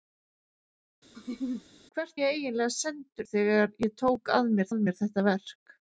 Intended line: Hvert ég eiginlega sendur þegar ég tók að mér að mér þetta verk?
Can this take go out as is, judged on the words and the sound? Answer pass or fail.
fail